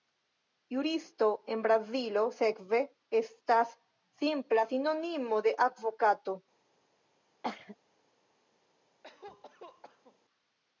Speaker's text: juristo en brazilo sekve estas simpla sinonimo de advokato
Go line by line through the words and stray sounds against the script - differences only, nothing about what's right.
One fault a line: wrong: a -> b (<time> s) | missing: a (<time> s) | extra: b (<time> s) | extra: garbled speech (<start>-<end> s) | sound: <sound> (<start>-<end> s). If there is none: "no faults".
sound: cough (7.4-7.8 s)
sound: cough (9.0-10.2 s)